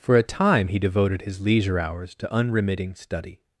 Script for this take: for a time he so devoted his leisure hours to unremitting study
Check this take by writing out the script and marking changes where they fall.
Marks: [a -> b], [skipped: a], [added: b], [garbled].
for a time he [skipped: so] devoted his leisure hours to unremitting study